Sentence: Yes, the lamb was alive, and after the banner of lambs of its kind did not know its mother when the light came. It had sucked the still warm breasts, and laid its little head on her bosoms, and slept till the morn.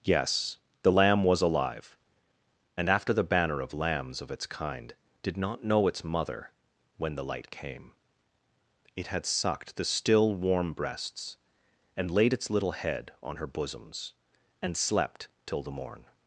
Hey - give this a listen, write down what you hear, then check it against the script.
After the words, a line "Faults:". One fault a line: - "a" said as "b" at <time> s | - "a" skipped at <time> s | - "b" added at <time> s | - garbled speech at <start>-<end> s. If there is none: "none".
Yes, the lamb was alive, and after the banner of lambs of its kind did not know its mother when the light came. It had sucked the still warm breasts, and laid its little head on her bosoms, and slept till the morn.
Faults:
none